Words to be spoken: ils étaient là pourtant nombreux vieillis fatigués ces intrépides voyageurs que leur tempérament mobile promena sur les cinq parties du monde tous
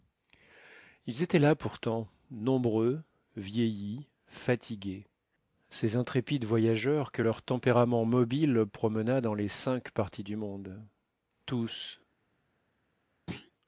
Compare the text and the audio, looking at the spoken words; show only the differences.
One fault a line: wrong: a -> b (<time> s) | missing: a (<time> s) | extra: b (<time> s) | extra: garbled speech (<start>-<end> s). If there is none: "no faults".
wrong: sur -> dans (9.2 s)